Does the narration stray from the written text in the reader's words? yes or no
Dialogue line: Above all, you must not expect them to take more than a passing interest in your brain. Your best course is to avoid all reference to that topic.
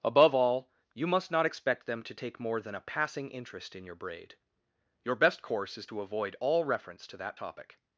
yes